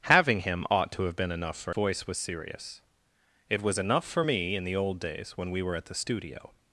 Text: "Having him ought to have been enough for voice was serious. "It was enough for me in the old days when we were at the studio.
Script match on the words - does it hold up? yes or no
yes